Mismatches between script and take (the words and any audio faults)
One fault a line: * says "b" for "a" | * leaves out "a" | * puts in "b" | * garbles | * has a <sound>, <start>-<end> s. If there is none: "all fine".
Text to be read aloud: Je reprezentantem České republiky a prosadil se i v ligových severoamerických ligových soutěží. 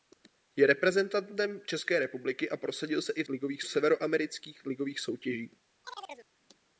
* has a chirp, 5.8-6.3 s